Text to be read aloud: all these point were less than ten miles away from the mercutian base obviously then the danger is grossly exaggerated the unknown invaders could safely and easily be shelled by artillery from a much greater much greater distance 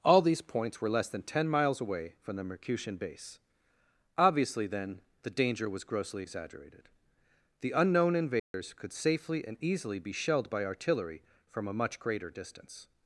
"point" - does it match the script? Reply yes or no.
no